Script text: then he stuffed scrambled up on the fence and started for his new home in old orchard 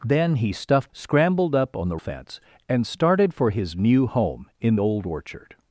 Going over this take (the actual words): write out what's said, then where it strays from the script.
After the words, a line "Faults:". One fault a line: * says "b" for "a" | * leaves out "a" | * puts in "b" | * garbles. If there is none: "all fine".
then he stuffed scrambled up on the fence and started for his new home in old orchard
Faults:
all fine